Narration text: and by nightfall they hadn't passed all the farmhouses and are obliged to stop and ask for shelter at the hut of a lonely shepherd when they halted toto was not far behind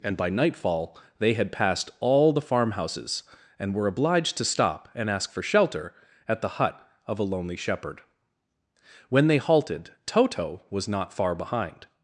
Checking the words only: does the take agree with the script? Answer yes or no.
no